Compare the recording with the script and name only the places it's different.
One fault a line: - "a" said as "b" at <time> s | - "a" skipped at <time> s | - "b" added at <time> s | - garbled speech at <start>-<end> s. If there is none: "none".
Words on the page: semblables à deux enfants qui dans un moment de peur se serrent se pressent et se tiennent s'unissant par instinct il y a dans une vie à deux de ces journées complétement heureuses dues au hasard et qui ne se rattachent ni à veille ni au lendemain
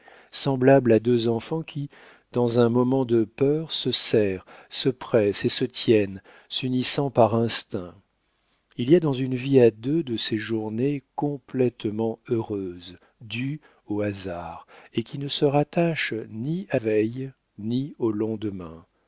none